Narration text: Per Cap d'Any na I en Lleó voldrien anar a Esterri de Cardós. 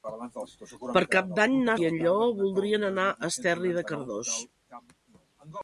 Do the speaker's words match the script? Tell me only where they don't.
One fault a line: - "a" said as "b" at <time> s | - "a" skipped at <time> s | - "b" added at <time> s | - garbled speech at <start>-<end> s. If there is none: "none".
none